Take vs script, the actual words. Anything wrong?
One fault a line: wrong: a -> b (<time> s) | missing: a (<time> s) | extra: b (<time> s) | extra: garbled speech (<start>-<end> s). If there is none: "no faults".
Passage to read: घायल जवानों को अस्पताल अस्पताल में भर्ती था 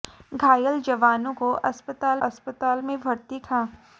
no faults